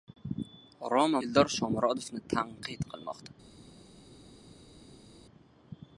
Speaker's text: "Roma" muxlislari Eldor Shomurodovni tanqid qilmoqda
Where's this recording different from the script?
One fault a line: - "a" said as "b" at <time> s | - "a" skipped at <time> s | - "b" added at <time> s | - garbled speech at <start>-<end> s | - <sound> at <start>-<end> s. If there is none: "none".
- "muxlislari" skipped at 1.2 s